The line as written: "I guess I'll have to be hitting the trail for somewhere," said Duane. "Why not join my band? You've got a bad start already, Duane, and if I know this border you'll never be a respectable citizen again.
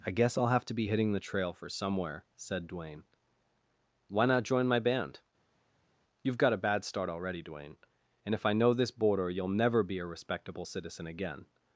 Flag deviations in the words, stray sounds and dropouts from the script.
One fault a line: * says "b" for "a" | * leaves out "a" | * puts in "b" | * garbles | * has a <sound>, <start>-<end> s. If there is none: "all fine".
all fine